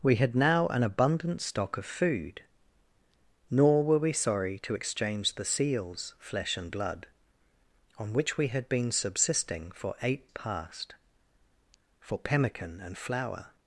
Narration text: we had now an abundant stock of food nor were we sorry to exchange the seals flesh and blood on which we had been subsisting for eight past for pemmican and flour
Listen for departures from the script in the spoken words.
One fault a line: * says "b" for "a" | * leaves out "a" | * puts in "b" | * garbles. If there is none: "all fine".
all fine